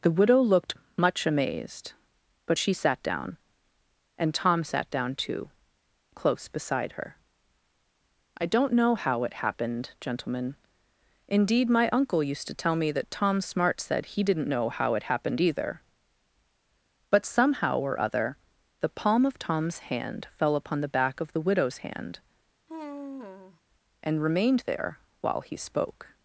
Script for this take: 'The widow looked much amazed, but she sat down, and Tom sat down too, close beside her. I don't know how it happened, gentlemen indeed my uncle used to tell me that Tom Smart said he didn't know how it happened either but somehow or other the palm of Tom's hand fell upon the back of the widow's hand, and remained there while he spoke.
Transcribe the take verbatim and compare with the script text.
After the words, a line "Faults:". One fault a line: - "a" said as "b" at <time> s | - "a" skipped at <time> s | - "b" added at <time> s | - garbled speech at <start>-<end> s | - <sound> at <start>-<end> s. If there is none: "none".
'The widow looked much amazed, but she sat down, and Tom sat down too, close beside her. I don't know how it happened, gentlemen indeed my uncle used to tell me that Tom Smart said he didn't know how it happened either but somehow or other the palm of Tom's hand fell upon the back of the widow's hand, and remained there while he spoke.
Faults:
- sigh at 22.7-23.6 s